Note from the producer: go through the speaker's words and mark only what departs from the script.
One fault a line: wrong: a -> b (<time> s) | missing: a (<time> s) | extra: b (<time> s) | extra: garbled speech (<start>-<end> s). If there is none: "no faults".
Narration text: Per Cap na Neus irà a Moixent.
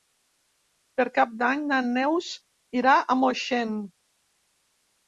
extra: d'Any (1.4 s)